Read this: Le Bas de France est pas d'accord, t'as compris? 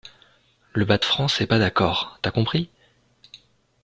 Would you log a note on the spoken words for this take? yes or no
no